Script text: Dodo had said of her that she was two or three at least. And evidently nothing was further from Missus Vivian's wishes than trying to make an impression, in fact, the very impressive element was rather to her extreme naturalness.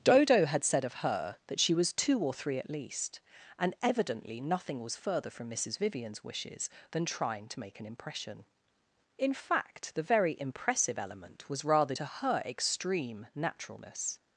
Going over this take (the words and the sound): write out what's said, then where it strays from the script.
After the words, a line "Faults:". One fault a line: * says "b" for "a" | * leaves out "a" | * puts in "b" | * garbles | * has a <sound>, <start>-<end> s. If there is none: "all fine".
Dodo had said of her that she was two or three at least. And evidently nothing was further from Missus Vivian's wishes than trying to make an impression, in fact, the very impressive element was rather to her extreme naturalness.
Faults:
all fine